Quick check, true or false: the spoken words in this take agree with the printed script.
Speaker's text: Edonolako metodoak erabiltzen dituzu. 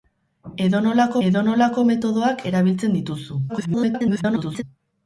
false